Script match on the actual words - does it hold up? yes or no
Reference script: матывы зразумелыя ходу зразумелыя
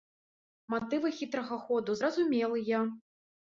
no